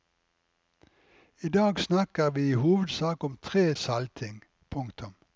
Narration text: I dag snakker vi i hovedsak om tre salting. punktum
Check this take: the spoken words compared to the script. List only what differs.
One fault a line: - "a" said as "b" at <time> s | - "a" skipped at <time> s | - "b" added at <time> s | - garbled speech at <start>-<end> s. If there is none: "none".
none